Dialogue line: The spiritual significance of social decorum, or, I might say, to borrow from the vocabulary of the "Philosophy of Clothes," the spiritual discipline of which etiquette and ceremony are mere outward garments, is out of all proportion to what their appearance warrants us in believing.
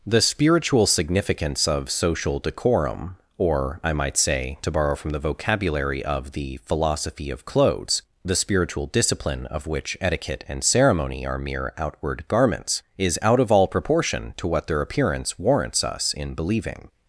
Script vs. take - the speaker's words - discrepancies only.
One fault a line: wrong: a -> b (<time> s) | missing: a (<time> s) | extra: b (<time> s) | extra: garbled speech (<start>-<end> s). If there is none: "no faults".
no faults